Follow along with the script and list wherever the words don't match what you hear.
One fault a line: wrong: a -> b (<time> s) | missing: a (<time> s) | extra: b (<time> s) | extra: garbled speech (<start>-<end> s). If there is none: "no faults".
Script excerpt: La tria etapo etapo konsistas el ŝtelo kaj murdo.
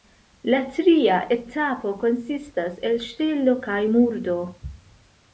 missing: etapo (1.9 s)